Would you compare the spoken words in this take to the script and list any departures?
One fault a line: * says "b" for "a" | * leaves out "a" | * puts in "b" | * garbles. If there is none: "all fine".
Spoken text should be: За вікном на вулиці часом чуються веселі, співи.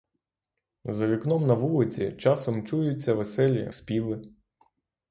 all fine